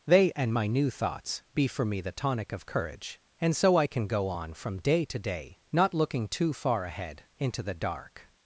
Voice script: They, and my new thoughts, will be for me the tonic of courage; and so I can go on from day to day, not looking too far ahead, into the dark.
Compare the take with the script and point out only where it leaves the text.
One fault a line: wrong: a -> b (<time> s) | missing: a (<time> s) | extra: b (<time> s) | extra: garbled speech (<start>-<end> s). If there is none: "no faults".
missing: will (1.4 s)